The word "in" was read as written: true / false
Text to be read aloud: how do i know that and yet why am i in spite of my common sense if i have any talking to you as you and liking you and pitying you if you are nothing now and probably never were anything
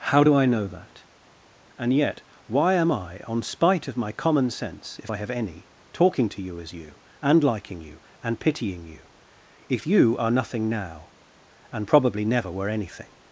false